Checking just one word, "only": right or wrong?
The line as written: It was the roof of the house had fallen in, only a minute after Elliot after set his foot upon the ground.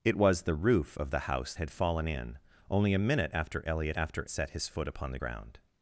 right